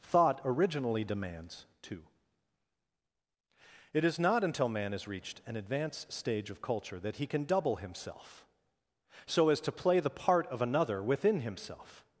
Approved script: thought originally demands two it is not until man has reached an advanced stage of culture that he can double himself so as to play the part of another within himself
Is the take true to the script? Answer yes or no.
yes